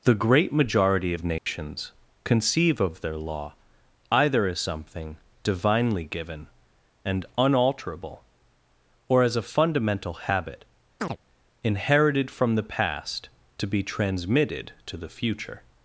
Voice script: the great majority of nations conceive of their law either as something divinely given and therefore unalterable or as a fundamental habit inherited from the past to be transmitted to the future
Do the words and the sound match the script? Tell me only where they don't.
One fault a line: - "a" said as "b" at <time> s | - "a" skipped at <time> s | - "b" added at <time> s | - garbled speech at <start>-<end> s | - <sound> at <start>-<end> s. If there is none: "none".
- dropout at 1.4-1.5 s
- "therefore" skipped at 7.2 s
- chirp at 11.0-11.2 s